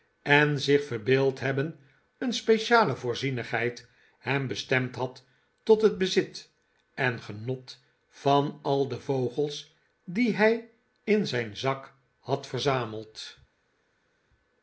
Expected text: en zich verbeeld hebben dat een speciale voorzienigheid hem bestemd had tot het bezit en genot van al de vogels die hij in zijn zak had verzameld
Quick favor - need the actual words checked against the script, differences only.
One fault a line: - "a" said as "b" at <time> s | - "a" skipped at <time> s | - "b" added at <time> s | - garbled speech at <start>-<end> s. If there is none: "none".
- "dat" skipped at 1.8 s